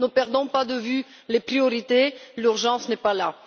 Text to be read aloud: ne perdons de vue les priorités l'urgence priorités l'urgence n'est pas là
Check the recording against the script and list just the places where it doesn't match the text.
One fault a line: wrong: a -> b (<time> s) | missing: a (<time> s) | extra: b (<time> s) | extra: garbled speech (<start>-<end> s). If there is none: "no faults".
extra: pas (0.5 s)
missing: priorités l'urgence (2.9 s)